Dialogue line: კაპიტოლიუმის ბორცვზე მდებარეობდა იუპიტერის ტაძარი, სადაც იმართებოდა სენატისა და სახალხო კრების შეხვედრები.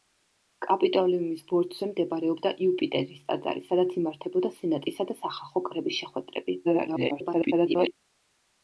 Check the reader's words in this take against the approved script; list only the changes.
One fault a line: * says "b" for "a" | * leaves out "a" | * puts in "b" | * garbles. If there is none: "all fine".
* garbles